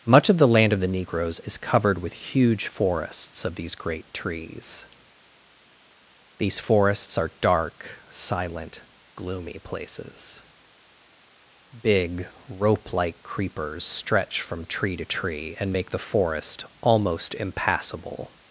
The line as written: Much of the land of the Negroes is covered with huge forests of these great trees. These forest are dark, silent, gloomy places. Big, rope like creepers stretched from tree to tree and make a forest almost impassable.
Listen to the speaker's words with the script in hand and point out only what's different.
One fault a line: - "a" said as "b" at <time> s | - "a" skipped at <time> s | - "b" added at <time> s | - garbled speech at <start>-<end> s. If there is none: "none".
- "forest" said as "forests" at 6.6 s
- "stretched" said as "stretch" at 13.8 s
- "a" said as "the" at 15.9 s